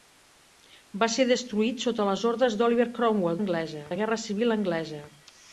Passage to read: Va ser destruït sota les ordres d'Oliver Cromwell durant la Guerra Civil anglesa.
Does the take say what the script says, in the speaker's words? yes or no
no